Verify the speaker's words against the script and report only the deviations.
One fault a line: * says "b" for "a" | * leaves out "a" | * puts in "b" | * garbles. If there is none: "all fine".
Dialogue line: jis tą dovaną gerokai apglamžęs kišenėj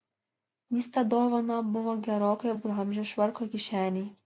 * puts in "buvo"
* puts in "švarko"